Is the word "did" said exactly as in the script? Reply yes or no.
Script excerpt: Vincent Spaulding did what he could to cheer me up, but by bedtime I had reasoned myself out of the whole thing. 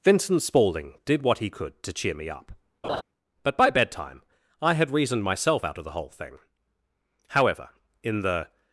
yes